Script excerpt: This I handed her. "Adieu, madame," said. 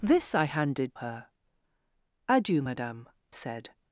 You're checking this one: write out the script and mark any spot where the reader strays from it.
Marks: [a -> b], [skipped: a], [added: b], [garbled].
This I handed her. "Adieu, madame," said.